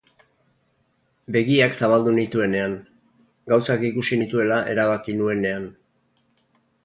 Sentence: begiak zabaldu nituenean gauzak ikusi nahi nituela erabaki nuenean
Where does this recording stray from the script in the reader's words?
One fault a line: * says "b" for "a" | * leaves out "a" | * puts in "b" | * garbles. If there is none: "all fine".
* leaves out "nahi"